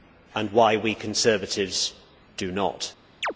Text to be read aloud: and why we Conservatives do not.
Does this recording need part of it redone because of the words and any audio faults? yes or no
yes